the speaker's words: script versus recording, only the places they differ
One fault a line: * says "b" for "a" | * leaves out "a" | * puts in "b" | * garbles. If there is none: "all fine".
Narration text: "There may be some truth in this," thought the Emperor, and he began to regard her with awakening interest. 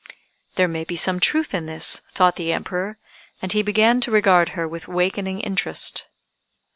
all fine